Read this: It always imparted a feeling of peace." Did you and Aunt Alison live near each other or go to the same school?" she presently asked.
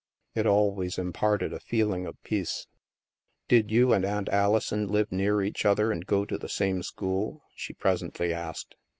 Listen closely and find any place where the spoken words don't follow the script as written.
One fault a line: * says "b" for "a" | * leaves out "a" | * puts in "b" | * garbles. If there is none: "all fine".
* says "and" for "or"